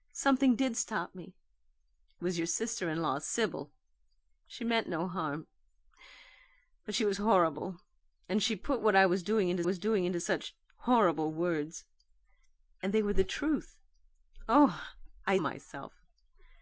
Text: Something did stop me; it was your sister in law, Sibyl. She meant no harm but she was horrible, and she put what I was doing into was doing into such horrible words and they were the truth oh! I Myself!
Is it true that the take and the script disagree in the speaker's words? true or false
false